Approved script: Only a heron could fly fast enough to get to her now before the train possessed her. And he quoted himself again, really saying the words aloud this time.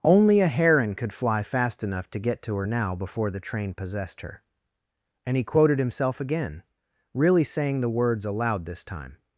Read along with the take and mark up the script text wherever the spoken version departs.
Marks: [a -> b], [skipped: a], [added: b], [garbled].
Only a heron could fly fast enough to get to her now before the train possessed her. And he quoted himself again, really saying the words aloud this time.